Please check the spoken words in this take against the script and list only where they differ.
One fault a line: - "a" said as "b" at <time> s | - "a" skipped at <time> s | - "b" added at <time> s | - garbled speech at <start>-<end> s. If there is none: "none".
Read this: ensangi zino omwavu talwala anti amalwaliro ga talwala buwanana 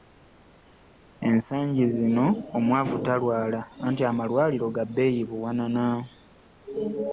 - "talwala" said as "bbeeyi" at 4.9 s